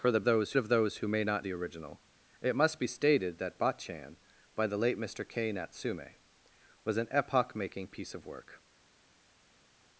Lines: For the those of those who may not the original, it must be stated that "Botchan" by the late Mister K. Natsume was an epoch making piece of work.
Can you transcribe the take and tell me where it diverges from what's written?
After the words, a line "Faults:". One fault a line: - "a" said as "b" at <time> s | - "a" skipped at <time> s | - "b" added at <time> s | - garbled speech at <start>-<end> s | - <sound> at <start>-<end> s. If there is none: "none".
For the those of those who may not the original, it must be stated that "Botchan" by the late Mister K. Natsume was an epoch making piece of work.
Faults:
none